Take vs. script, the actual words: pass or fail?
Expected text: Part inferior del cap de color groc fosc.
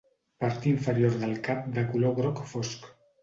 pass